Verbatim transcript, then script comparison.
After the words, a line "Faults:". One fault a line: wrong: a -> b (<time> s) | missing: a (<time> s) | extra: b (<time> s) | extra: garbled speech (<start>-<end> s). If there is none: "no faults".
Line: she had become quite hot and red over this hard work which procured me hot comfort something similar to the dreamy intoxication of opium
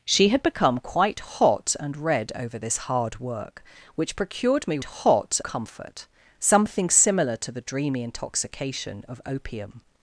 she had become quite hot and red over this hard work which procured me hot comfort something similar to the dreamy intoxication of opium
Faults:
no faults